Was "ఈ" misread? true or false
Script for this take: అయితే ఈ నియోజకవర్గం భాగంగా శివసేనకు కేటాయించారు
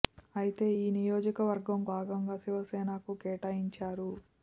false